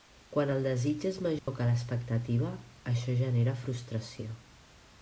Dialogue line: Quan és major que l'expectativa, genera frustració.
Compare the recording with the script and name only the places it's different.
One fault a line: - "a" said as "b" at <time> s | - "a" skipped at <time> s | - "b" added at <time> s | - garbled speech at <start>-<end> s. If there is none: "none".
- "el desig" added at 0.5 s
- "això" added at 2.9 s